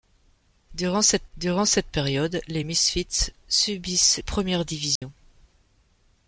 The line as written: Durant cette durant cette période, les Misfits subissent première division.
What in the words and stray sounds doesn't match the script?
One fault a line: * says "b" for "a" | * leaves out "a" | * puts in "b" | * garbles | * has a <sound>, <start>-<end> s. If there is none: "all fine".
* has a dropout, 5.0-5.0 s